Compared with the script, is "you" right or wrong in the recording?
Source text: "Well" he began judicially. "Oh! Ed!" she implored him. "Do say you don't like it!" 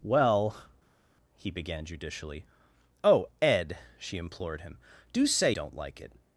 wrong